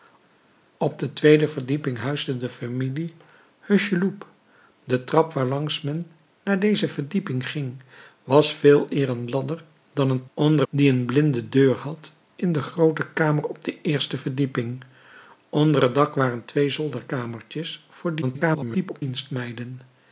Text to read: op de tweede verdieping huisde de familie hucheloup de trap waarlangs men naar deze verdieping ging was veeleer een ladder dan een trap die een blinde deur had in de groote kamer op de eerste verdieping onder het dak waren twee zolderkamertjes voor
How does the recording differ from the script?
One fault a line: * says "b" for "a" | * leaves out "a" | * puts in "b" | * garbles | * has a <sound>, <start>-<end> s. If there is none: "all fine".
* says "onder" for "trap"
* garbles